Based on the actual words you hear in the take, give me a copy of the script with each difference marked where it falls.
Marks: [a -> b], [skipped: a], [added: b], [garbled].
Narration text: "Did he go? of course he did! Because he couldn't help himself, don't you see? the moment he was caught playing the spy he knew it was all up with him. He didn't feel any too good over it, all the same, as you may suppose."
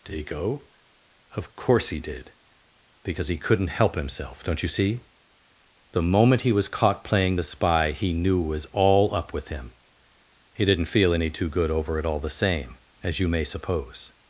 "Did he go? of course he did! Because he couldn't help himself, don't you see? the moment he was caught playing the spy he knew it was all up with him. He didn't feel any too good over it, all the same, as you may suppose."